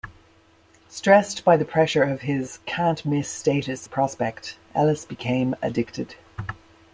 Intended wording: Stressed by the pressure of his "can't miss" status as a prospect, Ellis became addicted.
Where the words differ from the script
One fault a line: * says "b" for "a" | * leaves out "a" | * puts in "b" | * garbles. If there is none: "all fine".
* leaves out "as"